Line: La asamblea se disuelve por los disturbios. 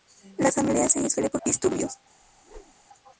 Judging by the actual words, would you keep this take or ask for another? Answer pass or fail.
fail